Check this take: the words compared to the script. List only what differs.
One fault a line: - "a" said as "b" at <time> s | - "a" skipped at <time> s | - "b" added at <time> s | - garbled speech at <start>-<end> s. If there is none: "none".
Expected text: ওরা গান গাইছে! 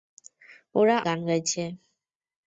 none